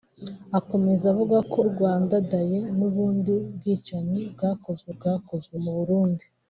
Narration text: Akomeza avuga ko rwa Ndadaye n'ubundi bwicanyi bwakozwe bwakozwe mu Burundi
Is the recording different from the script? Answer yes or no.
no